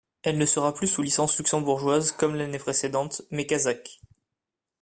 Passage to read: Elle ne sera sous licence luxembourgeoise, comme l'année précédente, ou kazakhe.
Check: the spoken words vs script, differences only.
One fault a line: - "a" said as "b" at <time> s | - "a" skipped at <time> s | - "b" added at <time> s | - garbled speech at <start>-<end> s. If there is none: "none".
- "plus" added at 0.7 s
- "ou" said as "mais" at 3.3 s